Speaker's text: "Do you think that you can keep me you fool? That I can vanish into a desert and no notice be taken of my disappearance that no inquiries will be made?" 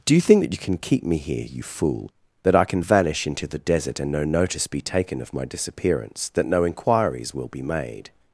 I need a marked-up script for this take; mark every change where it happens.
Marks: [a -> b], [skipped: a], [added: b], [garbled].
"Do you think that you can keep me [added: here] you fool? That I can vanish into [a -> the] desert and no notice be taken of my disappearance that no inquiries will be made?"